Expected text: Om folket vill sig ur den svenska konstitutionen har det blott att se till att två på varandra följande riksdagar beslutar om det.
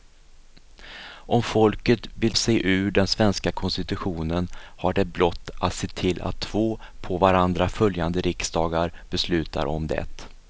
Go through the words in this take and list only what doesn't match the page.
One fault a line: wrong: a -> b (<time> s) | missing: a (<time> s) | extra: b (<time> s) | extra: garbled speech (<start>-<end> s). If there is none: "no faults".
no faults